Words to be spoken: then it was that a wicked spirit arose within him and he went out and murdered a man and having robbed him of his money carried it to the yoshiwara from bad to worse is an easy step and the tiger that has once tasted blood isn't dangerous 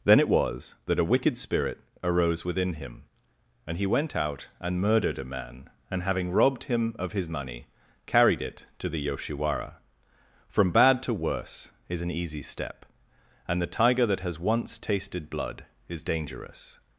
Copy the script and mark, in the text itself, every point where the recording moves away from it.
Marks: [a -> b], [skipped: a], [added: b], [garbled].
then it was that a wicked spirit arose within him and he went out and murdered a man and having robbed him of his money carried it to the yoshiwara from bad to worse is an easy step and the tiger that has once tasted blood [isn't -> is] dangerous